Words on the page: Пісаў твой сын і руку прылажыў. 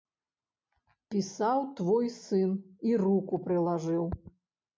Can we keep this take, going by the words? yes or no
yes